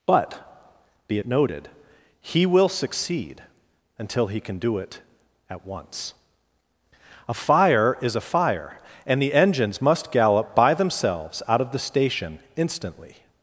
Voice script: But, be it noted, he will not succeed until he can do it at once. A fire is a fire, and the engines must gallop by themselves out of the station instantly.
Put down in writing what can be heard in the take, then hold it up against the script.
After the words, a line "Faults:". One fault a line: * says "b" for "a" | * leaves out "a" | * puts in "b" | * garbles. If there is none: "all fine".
But, be it noted, he will succeed until he can do it at once. A fire is a fire, and the engines must gallop by themselves out of the station instantly.
Faults:
* leaves out "not"